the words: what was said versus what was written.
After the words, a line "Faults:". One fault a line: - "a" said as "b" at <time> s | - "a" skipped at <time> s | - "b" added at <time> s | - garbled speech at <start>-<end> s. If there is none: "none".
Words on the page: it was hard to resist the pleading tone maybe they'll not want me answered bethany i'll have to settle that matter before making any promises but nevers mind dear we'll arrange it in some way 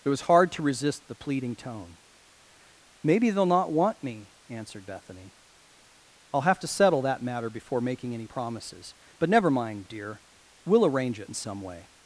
it was hard to resist the pleading tone maybe they'll not want me answered bethany i'll have to settle that matter before making any promises but never mind dear we'll arrange it in some way
Faults:
- "nevers" said as "never" at 9.3 s